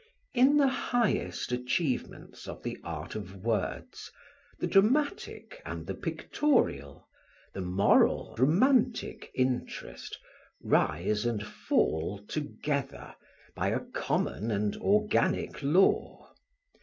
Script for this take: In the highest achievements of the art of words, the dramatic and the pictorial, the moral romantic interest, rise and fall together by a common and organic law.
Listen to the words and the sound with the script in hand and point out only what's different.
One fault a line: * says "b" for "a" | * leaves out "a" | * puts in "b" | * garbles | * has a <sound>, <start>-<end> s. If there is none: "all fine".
all fine